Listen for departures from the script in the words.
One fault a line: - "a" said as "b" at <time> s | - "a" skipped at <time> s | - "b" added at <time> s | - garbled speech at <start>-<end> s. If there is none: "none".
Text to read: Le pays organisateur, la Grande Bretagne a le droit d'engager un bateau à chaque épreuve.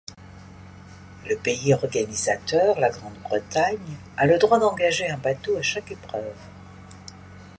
none